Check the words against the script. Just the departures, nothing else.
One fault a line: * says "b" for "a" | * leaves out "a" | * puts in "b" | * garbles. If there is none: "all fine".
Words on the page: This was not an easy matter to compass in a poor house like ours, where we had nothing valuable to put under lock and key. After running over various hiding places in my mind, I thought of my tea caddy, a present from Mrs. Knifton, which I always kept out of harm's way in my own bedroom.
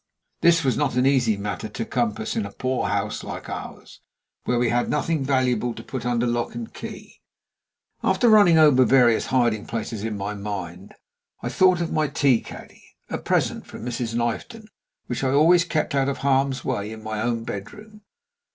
all fine